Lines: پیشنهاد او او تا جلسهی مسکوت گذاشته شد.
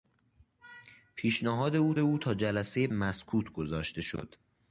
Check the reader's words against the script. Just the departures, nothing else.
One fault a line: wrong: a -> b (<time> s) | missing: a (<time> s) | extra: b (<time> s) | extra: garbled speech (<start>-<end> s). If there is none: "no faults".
no faults